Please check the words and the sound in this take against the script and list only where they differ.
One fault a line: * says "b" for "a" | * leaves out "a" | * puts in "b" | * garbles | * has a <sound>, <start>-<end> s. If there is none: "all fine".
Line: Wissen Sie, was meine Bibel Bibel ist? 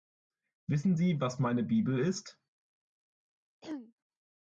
* leaves out "Bibel"
* has a throat clearing, 3.6-3.9 s